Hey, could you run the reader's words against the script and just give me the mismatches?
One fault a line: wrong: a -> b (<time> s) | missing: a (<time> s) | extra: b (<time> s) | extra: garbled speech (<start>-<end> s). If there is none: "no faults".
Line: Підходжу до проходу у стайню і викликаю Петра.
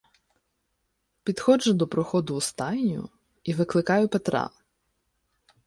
no faults